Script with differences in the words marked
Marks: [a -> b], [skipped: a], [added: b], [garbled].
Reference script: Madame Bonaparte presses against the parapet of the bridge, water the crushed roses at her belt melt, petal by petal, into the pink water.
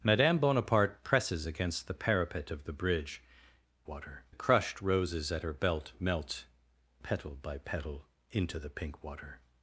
Madame Bonaparte presses against the parapet of the bridge, water the crushed roses at her belt melt, petal by petal, into the pink water.